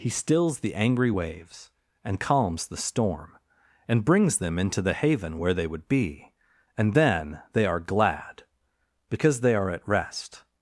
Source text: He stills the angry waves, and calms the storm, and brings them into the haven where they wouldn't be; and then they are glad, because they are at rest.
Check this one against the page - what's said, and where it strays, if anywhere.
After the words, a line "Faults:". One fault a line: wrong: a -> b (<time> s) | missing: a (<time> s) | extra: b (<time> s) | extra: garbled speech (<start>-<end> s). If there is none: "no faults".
He stills the angry waves, and calms the storm, and brings them into the haven where they would be; and then they are glad, because they are at rest.
Faults:
wrong: wouldn't -> would (5.7 s)